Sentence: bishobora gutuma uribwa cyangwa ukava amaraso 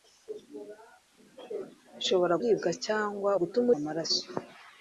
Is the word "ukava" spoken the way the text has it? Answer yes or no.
no